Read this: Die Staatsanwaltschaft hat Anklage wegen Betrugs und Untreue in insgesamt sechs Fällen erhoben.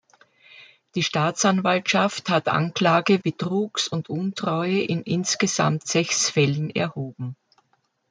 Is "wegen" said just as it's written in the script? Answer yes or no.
no